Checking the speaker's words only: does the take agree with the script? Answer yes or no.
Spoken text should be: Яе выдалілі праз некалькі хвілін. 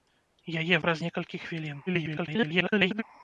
no